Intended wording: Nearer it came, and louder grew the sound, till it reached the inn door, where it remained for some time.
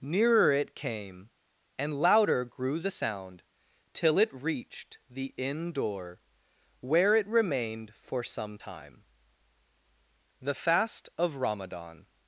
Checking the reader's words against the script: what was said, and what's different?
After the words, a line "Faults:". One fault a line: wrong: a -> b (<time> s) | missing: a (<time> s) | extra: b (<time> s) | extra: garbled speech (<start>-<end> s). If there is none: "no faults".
Nearer it came, and louder grew the sound, till it reached the inn door, where it remained for some time. The fast of Ramadan
Faults:
extra: The fast of Ramadan (10.4 s)